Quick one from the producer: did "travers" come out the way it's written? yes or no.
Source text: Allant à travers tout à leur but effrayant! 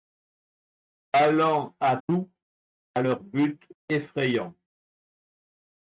no